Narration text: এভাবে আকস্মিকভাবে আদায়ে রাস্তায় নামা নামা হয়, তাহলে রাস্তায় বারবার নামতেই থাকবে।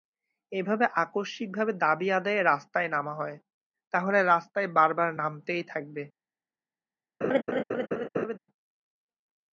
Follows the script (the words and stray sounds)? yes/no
no